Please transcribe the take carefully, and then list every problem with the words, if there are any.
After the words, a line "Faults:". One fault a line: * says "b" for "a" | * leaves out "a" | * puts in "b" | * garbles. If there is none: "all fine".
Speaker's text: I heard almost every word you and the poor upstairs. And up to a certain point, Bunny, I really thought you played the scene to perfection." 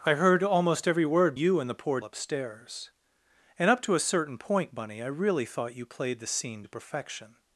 I heard almost every word you and the poor upstairs. And up to a certain point, Bunny, I really thought you played the scene to perfection."
Faults:
all fine